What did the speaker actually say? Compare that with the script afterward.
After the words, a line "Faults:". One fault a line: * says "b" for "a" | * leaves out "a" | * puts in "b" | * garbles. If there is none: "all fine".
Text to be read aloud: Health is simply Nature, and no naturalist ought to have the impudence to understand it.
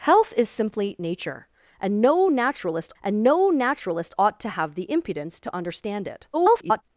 Health is simply Nature, and no naturalist and no naturalist ought to have the impudence to understand it. [garbled]
Faults:
* puts in "and no naturalist"
* garbles